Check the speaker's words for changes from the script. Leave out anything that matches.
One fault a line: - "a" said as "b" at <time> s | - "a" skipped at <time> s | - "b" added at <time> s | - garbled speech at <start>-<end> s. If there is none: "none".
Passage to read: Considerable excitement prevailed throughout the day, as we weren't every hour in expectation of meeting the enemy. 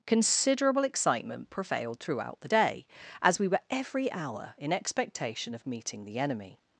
- "weren't" said as "were" at 3.5 s